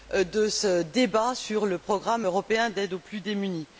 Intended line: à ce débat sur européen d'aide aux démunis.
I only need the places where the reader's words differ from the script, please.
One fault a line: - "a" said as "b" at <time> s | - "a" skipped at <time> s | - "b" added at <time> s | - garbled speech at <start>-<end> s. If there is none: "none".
- "à" said as "de" at 0.1 s
- "le programme" added at 1.7 s
- "plus" added at 3.0 s